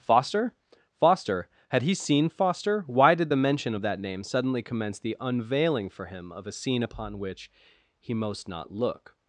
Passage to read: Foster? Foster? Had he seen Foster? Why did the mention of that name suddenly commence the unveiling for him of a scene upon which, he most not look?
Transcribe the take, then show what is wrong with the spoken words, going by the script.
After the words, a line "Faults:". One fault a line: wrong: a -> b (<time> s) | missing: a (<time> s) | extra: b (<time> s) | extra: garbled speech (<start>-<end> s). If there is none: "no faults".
Foster? Foster? Had he seen Foster? Why did the mention of that name suddenly commence the unveiling for him of a scene upon which, he most not look?
Faults:
no faults